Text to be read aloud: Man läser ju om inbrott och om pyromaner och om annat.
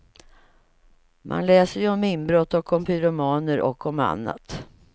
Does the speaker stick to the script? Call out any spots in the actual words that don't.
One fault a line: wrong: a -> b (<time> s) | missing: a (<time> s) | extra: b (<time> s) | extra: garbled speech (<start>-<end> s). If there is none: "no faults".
no faults